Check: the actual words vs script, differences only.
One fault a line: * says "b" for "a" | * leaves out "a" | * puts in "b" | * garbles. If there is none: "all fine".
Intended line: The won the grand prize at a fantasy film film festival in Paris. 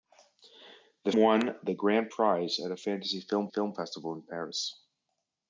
all fine